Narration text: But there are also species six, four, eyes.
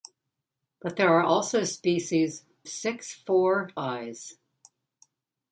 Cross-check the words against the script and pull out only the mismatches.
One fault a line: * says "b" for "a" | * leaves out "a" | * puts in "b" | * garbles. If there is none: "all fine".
all fine